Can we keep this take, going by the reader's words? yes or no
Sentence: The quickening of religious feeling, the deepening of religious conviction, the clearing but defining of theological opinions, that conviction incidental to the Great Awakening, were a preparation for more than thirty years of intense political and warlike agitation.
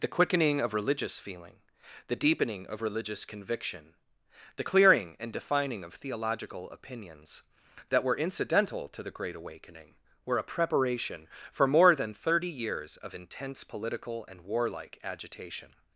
no